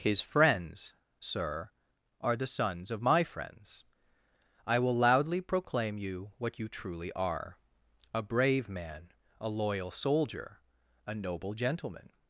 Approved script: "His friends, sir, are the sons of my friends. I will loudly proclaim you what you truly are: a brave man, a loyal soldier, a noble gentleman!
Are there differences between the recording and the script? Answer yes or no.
no